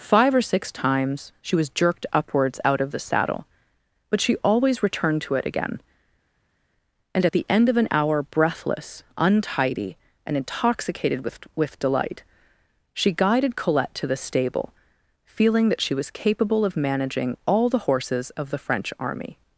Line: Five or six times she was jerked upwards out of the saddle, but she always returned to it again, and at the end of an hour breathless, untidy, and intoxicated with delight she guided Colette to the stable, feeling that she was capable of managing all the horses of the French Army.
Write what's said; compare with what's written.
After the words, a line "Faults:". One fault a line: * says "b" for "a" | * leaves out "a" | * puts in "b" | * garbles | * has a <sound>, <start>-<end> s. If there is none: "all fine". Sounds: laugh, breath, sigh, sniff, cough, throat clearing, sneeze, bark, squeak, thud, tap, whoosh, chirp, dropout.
Five or six times she was jerked upwards out of the saddle, but she always returned to it again, and at the end of an hour breathless, untidy, and intoxicated with with delight she guided Colette to the stable, feeling that she was capable of managing all the horses of the French Army.
Faults:
* puts in "with"